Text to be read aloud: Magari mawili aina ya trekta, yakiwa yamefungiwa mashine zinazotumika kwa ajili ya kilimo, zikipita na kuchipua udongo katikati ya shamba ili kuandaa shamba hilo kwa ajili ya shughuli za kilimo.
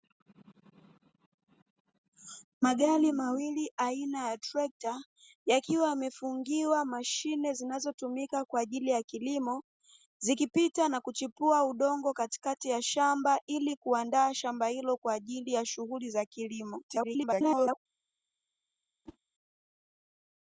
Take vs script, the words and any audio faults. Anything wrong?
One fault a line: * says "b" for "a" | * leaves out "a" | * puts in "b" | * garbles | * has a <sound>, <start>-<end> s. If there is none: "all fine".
* garbles
* has a whoosh, 19.1-19.2 s